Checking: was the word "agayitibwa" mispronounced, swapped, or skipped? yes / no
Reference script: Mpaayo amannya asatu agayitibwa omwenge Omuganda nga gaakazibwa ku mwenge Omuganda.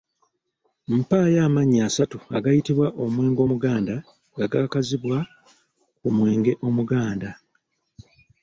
no